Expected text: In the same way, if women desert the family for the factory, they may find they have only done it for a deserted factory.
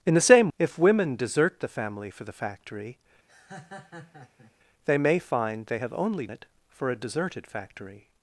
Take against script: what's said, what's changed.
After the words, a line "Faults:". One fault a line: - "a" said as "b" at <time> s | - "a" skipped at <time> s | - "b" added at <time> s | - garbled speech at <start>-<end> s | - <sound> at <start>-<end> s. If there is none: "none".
In the same if women desert the family for the factory, they may find they have only it for a deserted factory.
Faults:
- "way" skipped at 0.5 s
- laugh at 3.3-4.5 s
- "done" skipped at 6.3 s